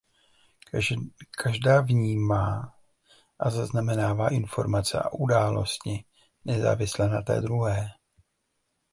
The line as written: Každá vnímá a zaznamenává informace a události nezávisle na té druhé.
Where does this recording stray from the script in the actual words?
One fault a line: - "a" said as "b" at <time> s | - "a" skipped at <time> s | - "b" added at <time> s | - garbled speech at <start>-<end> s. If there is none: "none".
none